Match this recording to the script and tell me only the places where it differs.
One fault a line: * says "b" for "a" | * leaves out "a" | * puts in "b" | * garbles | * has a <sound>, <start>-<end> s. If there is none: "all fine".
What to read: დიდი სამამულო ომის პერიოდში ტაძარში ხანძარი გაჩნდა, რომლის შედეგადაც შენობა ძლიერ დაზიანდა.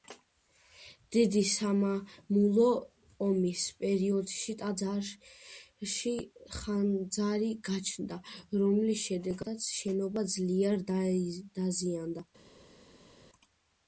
all fine